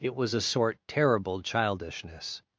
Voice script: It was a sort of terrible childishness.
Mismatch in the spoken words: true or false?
true